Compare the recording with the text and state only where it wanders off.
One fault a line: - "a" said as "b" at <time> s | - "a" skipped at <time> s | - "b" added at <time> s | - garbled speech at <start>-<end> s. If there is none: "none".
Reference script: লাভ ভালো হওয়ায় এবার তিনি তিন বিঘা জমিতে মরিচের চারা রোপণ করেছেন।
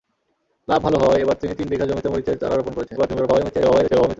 - garbled speech at 3.0-4.2 s